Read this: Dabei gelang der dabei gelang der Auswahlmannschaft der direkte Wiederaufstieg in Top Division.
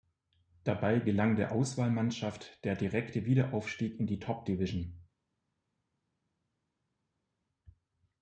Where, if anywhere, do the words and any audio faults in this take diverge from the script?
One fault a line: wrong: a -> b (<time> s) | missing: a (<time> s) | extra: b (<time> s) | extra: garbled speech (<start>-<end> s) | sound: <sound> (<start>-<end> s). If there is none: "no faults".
missing: dabei gelang der (1.5 s)
extra: die (4.1 s)